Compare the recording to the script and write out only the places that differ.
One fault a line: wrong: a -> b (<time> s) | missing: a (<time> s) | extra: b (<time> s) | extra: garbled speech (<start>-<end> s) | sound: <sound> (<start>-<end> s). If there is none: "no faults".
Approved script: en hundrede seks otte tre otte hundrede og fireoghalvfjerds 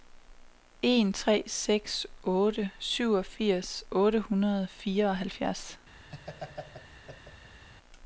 wrong: hundrede -> tre (1.1 s)
wrong: tre -> syvogfirs (2.8 s)
sound: laugh (6.1-7.6 s)